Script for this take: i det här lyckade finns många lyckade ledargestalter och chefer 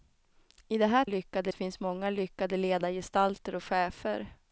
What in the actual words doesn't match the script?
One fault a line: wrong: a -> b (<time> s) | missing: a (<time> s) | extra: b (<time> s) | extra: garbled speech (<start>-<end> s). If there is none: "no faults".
no faults